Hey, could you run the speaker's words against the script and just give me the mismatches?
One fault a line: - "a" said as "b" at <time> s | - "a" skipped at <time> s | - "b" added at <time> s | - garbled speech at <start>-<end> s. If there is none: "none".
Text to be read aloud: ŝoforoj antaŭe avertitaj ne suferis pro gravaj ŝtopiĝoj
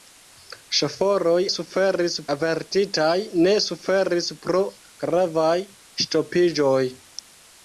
- "antaŭe" said as "suferis" at 1.5 s